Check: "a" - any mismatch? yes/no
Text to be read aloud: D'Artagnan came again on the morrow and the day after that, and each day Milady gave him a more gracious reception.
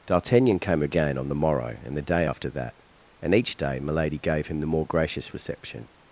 yes